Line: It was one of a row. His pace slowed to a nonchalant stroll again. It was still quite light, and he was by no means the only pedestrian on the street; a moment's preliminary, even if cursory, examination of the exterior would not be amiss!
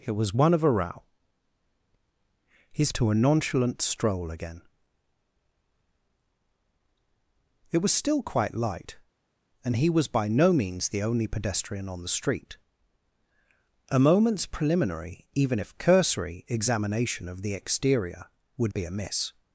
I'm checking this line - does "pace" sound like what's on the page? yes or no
no